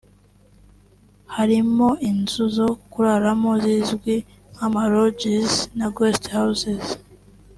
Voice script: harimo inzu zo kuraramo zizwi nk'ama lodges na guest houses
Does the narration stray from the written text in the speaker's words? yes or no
no